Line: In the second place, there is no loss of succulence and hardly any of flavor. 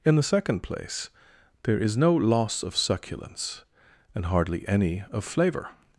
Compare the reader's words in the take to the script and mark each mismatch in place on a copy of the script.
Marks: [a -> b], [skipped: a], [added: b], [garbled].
In the second place, there is no loss of succulence and hardly any of flavor.